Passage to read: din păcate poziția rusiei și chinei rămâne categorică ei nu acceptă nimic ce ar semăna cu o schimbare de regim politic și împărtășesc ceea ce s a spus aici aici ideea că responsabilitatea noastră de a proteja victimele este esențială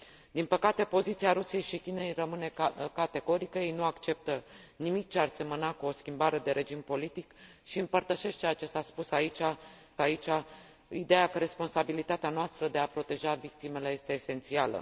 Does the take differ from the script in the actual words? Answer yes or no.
no